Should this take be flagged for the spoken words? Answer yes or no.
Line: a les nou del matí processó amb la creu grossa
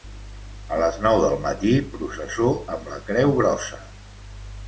no